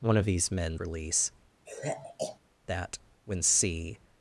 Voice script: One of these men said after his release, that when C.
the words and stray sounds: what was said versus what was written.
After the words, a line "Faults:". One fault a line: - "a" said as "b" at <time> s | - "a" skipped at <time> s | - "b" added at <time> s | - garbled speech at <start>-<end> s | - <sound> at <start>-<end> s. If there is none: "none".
One of these men release, that when C.
Faults:
- "said after his" skipped at 0.8 s
- sigh at 1.7-2.4 s